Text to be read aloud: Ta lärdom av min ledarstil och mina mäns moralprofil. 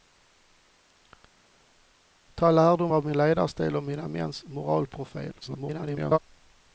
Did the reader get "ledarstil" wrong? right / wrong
right